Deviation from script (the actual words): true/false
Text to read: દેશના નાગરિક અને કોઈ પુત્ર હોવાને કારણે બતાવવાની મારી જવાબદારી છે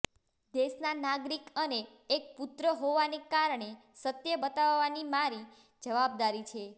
true